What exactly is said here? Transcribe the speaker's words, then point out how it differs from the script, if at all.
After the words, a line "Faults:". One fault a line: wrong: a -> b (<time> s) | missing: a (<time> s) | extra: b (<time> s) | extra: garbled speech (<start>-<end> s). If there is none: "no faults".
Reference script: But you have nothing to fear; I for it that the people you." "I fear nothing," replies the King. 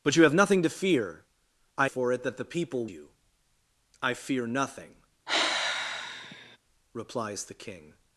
But you have nothing to fear; I for it that the people you." "I fear nothing," replies the King.
Faults:
no faults